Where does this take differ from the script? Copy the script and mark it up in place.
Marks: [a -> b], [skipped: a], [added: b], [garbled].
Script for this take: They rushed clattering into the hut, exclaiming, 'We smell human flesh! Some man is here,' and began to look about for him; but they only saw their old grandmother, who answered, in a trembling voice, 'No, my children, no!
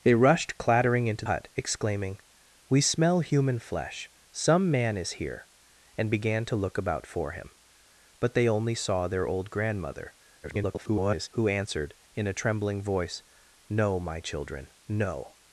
They rushed clattering into [skipped: the] hut, exclaiming, 'We smell human flesh! Some man is here,' and began to look about for him; but they only saw their old grandmother, [garbled] who answered, in a trembling voice, 'No, my children, no!